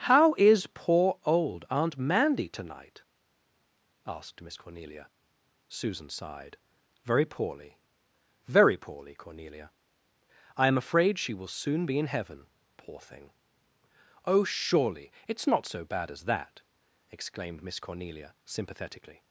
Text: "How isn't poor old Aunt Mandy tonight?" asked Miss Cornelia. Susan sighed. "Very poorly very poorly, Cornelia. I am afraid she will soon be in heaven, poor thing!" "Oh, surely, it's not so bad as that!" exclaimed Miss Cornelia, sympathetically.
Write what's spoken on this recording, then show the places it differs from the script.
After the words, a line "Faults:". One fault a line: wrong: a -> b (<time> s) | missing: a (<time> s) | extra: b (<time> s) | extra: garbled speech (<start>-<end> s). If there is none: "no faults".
"How is poor old Aunt Mandy tonight?" asked Miss Cornelia. Susan sighed. "Very poorly very poorly, Cornelia. I am afraid she will soon be in heaven, poor thing!" "Oh, surely, it's not so bad as that!" exclaimed Miss Cornelia, sympathetically.
Faults:
wrong: isn't -> is (0.3 s)